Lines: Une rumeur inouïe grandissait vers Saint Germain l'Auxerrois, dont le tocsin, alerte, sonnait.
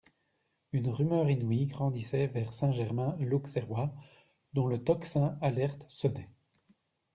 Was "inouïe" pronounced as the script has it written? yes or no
yes